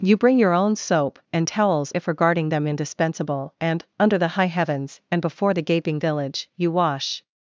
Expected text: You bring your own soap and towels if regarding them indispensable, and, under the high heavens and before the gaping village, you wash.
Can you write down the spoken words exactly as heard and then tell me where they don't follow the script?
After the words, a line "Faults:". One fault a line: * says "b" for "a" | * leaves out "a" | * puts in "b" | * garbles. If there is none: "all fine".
You bring your own soap and towels if regarding them indispensable, and, under the high heavens and before the gaping village, you wash.
Faults:
all fine